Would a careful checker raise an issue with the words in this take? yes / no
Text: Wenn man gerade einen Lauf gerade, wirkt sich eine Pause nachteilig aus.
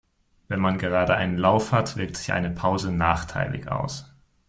yes